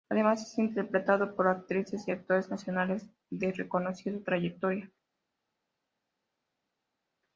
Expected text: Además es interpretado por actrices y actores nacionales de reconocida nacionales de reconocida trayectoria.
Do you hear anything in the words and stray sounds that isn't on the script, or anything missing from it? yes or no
yes